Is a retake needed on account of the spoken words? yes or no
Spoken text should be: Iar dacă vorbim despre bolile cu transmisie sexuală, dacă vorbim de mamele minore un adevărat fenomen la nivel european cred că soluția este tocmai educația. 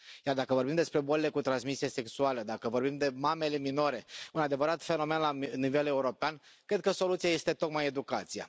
no